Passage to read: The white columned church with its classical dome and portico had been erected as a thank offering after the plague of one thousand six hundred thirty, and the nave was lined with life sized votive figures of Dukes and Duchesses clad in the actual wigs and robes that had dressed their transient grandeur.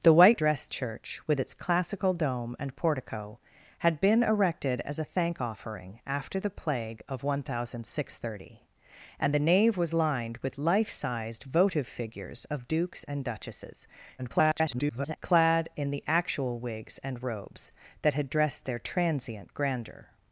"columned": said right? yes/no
no